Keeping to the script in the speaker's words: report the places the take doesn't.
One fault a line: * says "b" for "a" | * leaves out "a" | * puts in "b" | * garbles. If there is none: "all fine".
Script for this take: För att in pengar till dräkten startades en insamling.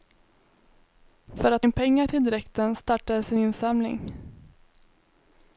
all fine